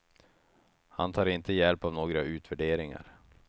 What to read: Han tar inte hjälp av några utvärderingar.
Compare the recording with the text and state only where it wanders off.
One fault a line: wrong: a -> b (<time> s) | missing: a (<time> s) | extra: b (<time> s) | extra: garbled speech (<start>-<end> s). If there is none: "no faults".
no faults